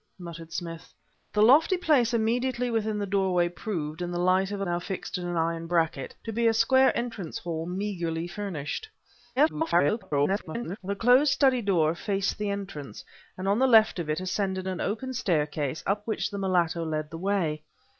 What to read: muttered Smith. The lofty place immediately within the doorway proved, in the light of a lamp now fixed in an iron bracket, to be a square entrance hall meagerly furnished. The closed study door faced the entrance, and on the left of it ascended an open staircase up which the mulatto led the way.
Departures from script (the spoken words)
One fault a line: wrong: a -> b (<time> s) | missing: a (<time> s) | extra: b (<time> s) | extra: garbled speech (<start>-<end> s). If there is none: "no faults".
missing: lamp (4.7 s)
extra: garbled speech (9.4-10.8 s)